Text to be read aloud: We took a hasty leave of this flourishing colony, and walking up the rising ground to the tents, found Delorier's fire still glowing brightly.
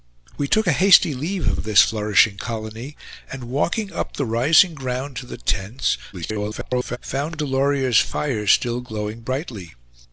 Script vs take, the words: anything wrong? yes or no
yes